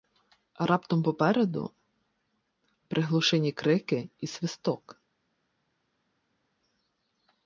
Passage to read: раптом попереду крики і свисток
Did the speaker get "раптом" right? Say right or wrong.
right